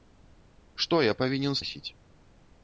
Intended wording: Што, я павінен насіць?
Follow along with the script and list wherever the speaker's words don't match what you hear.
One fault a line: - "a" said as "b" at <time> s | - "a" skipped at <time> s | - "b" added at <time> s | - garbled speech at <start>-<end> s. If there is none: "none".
none